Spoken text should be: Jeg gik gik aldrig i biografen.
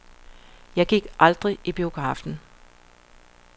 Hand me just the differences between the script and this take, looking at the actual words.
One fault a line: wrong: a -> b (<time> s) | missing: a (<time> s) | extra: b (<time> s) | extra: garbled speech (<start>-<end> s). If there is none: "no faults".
missing: gik (1.1 s)